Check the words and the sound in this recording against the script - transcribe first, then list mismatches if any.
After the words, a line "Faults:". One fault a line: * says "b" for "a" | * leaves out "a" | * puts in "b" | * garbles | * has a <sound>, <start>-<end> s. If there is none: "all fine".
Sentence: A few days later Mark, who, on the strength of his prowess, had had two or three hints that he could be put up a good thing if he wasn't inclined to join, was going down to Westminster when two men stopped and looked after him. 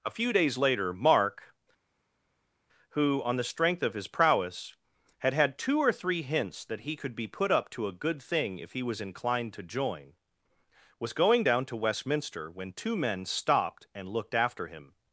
A few days later Mark, who, on the strength of his prowess, had had two or three hints that he could be put up to a good thing if he was inclined to join, was going down to Westminster when two men stopped and looked after him.
Faults:
* puts in "to"
* says "was" for "wasn't"